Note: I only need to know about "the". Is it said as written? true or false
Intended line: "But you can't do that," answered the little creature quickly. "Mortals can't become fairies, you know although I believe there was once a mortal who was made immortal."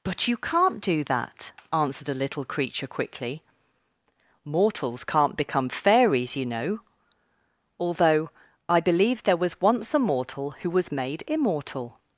false